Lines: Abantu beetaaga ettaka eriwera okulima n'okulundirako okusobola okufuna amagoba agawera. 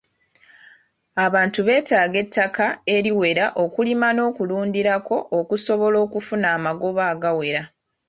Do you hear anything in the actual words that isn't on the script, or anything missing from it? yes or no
no